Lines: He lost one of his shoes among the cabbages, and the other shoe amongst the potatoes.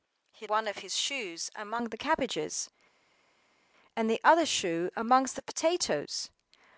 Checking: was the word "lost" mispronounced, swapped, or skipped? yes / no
yes